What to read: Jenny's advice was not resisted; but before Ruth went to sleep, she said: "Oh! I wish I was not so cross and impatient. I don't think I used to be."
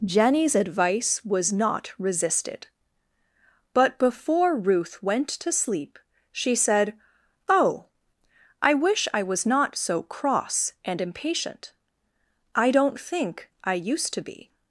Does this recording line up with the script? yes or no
yes